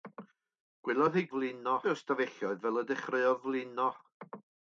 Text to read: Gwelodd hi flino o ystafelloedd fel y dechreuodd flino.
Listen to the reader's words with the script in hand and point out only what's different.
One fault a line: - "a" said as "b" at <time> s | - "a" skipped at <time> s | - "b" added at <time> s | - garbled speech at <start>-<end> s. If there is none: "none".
none